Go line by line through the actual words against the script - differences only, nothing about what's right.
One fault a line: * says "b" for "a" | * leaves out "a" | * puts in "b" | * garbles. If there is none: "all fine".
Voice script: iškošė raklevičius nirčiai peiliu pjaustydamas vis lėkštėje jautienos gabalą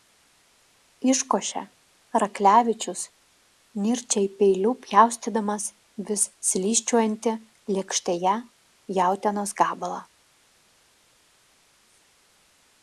* puts in "slysčiojantį"